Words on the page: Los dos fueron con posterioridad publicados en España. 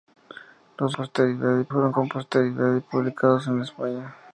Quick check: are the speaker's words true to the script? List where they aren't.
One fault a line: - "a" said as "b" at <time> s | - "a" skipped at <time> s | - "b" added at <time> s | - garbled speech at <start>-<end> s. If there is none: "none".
- "dos" said as "posterioridad" at 0.9 s